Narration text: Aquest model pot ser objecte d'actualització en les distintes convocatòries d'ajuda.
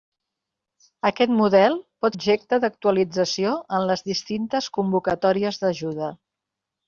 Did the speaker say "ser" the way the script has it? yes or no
no